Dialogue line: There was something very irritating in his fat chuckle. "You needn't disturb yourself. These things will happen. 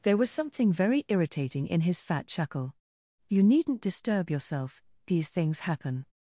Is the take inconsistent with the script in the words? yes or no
yes